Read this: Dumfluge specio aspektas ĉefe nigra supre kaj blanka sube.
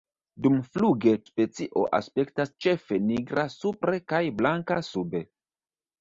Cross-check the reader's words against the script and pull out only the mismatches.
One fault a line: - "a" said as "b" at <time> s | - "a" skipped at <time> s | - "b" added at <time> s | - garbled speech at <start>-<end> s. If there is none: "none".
none